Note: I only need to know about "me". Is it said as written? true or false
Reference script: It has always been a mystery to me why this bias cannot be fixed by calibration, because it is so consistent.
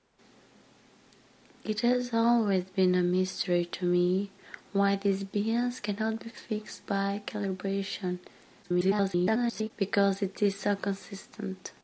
true